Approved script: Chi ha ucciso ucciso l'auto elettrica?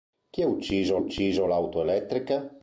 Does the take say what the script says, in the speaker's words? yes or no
yes